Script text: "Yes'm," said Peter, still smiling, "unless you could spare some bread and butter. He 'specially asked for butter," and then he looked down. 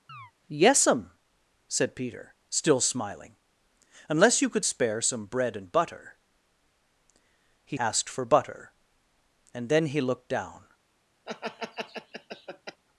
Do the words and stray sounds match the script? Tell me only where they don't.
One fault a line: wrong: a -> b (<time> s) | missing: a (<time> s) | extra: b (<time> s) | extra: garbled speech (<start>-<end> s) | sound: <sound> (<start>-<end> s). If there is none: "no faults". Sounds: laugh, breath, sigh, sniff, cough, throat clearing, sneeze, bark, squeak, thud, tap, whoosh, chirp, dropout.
sound: chirp (0.1-0.3 s)
missing: specially (7.8 s)
sound: laugh (11.3-12.8 s)